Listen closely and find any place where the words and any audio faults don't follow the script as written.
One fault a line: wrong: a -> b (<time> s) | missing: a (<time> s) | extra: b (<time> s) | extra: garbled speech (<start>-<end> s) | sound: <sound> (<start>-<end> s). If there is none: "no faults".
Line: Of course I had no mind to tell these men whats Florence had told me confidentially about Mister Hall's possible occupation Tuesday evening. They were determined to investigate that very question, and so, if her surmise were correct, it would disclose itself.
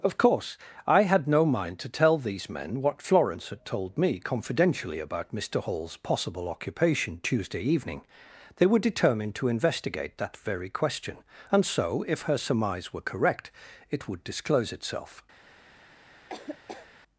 wrong: whats -> what (2.8 s)
sound: laugh (16.3-16.9 s)